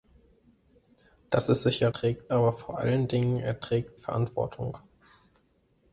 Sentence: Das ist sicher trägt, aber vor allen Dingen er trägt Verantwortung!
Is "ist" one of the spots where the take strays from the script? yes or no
no